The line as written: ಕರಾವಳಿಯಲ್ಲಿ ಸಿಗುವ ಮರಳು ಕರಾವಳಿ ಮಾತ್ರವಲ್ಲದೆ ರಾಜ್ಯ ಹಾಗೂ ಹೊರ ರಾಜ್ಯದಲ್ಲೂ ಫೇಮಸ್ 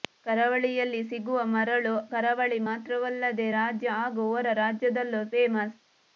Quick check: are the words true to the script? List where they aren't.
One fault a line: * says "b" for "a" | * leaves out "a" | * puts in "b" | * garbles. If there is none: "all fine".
all fine